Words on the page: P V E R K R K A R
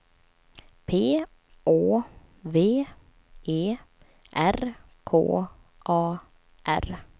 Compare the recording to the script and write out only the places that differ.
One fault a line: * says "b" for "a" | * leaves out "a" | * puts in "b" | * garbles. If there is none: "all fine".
* puts in "Å"
* leaves out "R K"